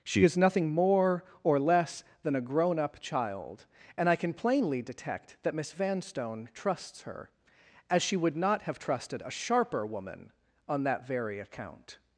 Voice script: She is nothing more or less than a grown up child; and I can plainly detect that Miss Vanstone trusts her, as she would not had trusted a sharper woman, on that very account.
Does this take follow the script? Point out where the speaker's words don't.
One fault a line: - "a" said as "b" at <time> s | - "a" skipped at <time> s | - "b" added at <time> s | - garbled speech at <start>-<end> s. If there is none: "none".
- "had" said as "have" at 8.6 s